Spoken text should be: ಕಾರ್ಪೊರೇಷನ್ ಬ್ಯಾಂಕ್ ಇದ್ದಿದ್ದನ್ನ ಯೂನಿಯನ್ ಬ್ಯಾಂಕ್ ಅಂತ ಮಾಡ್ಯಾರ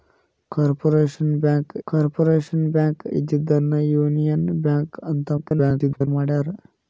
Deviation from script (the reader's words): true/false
true